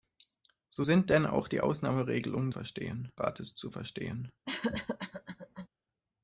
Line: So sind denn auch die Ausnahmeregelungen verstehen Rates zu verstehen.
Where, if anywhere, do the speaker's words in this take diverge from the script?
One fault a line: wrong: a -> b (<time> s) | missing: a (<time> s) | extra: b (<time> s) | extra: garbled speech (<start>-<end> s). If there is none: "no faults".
no faults